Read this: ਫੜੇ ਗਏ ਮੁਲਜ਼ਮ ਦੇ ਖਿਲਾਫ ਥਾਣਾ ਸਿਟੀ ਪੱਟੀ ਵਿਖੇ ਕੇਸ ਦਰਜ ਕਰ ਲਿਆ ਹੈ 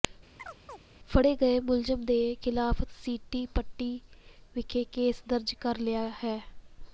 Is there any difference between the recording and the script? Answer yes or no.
yes